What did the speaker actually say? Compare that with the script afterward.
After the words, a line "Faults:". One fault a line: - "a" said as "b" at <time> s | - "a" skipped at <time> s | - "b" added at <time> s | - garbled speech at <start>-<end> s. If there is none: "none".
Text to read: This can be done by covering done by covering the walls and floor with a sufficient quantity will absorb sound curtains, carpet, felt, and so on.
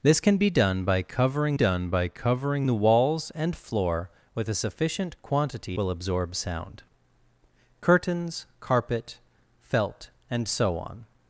This can be done by covering done by covering the walls and floor with a sufficient quantity will absorb sound curtains, carpet, felt, and so on.
Faults:
none